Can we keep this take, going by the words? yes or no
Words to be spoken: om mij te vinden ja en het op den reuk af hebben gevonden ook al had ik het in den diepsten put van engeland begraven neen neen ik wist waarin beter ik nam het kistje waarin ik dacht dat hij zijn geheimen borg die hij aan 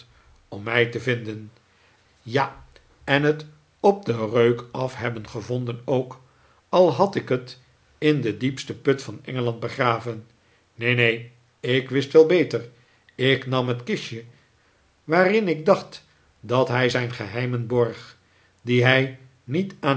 no